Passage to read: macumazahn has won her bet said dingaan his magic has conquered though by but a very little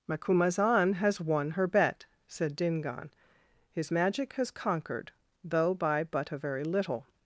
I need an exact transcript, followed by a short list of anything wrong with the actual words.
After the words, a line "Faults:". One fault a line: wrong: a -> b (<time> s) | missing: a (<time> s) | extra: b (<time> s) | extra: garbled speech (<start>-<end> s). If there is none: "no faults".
macumazahn has won her bet said dingaan his magic has conquered though by but a very little
Faults:
no faults